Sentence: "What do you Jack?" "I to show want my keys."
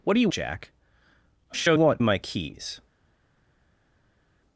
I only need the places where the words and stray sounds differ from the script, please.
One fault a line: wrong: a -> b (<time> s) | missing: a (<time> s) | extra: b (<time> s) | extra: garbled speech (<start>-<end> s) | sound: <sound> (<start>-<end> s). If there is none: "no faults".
no faults